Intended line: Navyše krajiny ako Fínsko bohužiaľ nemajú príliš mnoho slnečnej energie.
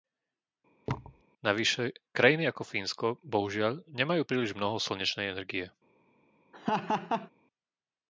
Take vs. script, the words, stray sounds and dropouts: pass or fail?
fail